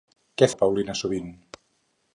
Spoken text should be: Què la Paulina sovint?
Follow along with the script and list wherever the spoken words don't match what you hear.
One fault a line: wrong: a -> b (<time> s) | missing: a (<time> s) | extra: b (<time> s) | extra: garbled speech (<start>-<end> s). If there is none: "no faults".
no faults